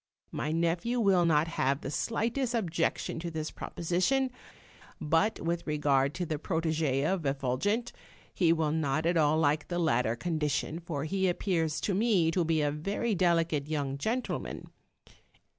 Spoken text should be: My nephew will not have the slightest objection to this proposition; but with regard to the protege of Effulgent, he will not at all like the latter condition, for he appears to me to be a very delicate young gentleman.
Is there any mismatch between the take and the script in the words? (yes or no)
no